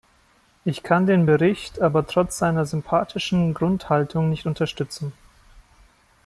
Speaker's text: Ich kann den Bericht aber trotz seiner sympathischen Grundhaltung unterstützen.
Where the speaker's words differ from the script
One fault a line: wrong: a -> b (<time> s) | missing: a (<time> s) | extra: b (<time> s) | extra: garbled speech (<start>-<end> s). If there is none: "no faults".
extra: nicht (4.3 s)